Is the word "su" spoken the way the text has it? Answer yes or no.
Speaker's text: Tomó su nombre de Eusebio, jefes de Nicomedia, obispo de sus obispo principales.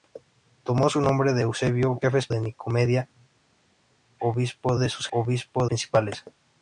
yes